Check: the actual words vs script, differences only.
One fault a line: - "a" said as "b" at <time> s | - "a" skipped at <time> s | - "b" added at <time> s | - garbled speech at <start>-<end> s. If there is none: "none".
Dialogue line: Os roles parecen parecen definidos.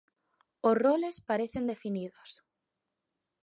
- "parecen" skipped at 1.6 s